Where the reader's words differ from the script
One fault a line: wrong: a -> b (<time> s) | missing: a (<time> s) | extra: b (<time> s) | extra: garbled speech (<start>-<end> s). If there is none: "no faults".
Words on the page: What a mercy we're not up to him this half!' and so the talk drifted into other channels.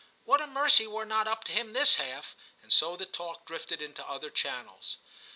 no faults